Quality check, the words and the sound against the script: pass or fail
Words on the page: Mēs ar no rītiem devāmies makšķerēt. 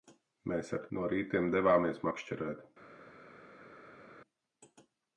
pass